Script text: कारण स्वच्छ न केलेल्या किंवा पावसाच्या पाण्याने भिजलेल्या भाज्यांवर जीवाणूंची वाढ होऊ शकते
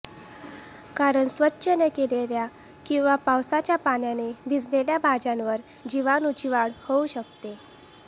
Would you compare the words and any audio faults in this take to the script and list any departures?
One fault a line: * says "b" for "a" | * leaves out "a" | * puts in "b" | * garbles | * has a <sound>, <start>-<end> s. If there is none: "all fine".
all fine